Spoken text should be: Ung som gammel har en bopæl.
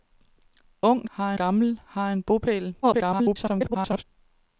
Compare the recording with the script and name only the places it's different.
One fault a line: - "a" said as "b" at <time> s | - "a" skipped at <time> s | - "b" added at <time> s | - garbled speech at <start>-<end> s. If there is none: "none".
- "som" said as "har" at 1.1 s
- garbled speech at 2.8-4.0 s